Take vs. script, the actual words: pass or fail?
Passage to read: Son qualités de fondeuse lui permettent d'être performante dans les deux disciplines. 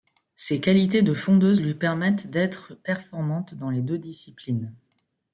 fail